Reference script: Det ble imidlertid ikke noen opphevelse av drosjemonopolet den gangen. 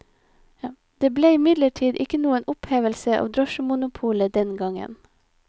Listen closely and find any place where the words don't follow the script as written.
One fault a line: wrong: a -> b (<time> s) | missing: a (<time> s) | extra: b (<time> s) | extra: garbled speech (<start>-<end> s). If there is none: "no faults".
no faults